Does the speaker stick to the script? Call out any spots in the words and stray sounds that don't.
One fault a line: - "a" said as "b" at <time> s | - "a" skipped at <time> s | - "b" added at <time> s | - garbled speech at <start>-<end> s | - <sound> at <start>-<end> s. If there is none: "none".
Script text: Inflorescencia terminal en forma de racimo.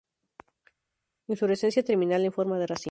none